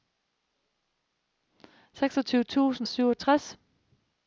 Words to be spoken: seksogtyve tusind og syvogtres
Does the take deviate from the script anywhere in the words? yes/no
no